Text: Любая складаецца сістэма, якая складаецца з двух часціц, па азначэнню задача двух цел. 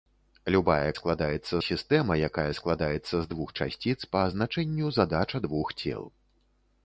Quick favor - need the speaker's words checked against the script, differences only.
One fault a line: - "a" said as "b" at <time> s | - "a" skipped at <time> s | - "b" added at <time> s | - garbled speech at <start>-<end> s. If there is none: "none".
none